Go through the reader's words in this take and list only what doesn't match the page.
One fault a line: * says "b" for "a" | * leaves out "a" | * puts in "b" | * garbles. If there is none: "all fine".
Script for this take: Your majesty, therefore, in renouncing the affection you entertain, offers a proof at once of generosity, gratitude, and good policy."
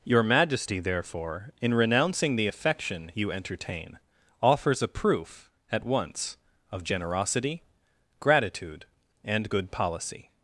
all fine